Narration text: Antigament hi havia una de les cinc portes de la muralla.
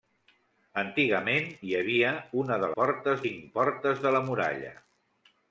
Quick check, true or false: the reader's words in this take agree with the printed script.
false